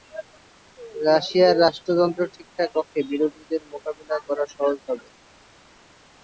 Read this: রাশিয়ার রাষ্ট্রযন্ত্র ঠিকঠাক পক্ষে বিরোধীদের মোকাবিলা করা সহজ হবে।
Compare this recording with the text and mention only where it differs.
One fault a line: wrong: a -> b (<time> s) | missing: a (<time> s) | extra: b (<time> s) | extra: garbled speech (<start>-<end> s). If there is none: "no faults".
no faults